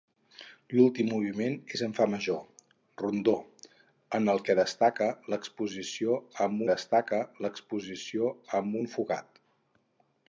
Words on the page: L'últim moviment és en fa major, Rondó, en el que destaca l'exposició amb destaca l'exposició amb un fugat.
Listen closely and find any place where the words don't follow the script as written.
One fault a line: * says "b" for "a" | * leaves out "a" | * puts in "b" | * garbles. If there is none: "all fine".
all fine